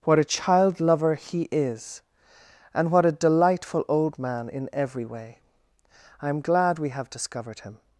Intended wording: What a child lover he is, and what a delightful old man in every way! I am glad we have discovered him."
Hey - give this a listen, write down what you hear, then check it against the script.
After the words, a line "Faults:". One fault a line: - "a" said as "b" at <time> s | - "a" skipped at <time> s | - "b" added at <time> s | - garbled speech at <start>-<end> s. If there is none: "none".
What a child lover he is, and what a delightful old man in every way! I am glad we have discovered him."
Faults:
none